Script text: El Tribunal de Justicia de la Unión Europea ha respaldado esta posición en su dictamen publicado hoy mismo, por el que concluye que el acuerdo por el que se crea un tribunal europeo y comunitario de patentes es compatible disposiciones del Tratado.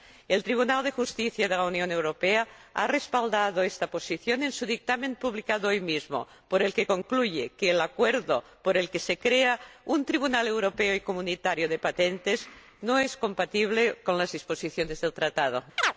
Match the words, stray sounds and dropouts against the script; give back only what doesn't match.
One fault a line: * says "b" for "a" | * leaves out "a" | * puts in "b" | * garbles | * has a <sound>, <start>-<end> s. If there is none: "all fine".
* puts in "no"
* puts in "con las"
* has a chirp, 15.8-15.9 s